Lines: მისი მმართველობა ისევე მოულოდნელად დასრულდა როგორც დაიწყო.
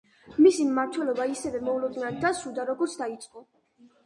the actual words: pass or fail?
pass